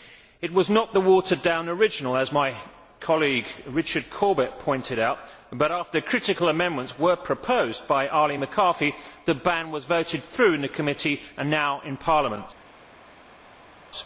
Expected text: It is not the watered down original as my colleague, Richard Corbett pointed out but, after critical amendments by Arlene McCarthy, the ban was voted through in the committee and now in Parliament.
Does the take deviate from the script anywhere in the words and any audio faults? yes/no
yes